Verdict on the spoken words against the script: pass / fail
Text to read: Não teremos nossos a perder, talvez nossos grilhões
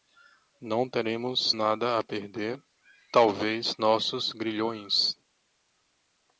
fail